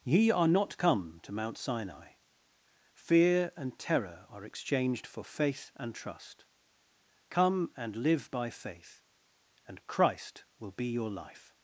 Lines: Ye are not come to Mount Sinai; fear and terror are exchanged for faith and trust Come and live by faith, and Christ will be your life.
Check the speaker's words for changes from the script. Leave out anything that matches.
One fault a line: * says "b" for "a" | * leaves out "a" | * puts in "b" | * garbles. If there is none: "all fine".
all fine